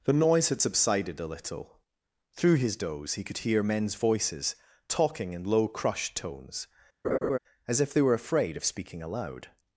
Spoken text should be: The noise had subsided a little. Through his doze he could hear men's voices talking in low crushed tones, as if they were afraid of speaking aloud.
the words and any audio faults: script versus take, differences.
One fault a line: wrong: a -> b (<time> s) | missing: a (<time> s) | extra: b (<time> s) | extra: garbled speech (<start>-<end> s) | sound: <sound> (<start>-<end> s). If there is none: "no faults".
sound: laugh (7.0-7.4 s)